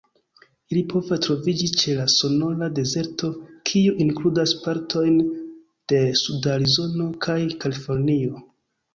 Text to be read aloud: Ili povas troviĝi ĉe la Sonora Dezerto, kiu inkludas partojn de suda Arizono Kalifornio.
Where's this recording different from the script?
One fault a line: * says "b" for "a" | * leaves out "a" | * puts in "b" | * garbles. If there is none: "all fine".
* puts in "kaj"